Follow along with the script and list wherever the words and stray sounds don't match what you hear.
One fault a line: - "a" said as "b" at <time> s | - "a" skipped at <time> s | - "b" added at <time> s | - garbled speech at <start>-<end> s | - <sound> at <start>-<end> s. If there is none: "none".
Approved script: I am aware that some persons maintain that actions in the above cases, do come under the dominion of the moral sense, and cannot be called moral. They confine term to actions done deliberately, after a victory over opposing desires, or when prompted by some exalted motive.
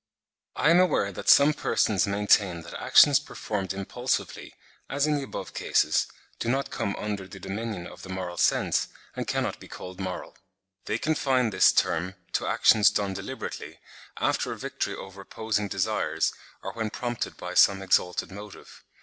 - "performed impulsively as" added at 3.2 s
- "not" added at 6.5 s
- "this" added at 11.5 s